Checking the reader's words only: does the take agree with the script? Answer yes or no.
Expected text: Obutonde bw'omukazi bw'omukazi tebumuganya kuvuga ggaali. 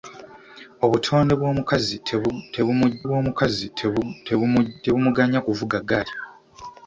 yes